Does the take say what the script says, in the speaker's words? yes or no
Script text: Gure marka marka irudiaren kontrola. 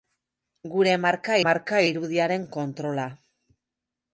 yes